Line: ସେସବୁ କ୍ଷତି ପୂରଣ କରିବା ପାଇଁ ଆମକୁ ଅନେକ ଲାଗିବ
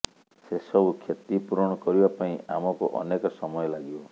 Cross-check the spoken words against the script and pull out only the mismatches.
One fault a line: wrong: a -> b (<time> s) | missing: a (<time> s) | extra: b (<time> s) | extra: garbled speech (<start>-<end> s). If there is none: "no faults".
extra: ସମୟ (3.4 s)